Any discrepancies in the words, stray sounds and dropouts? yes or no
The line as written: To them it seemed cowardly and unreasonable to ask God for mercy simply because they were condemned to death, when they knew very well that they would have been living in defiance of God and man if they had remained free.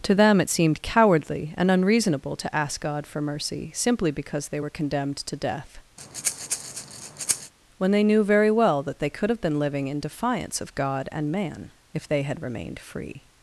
yes